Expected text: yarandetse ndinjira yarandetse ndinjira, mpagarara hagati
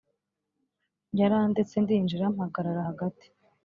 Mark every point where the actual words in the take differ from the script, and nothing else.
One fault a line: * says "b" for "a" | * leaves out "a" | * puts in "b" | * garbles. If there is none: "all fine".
* leaves out "yarandetse ndinjira"